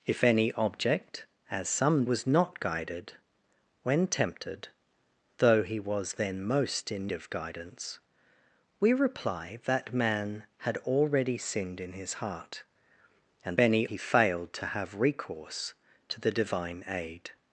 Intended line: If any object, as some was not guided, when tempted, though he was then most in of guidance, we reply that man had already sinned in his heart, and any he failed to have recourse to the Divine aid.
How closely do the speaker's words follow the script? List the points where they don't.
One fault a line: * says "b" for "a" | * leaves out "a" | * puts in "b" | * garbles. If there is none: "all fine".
all fine